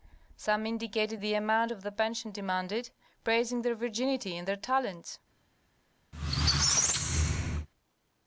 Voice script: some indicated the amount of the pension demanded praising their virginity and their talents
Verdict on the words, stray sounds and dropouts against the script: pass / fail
fail